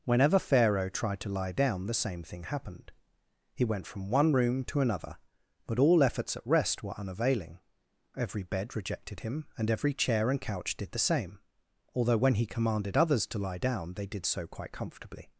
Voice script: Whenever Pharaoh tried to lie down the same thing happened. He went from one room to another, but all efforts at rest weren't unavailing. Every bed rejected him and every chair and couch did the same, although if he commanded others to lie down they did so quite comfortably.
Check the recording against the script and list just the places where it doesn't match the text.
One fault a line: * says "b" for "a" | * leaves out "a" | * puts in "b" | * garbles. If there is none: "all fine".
* says "were" for "weren't"
* says "when" for "if"